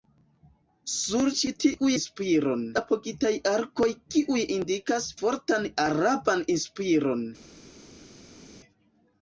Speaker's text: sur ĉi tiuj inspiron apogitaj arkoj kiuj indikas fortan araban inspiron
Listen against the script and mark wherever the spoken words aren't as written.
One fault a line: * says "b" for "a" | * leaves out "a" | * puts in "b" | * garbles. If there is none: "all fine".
all fine